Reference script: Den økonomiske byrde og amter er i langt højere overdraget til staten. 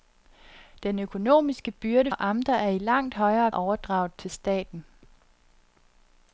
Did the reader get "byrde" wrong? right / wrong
right